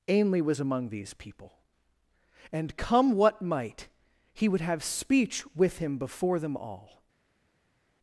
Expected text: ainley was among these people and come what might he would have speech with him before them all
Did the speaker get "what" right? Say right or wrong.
right